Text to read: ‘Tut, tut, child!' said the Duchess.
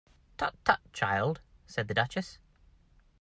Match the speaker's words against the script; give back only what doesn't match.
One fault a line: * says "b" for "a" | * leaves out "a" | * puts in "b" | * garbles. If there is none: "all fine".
all fine